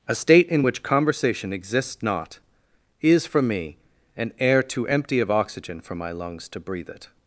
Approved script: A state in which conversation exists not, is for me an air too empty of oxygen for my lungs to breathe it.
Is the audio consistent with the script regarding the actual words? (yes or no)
yes